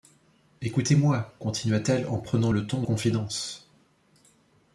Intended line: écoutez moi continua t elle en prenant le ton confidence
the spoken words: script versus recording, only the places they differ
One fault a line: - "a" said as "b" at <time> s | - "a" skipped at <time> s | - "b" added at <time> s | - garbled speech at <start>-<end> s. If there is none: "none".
none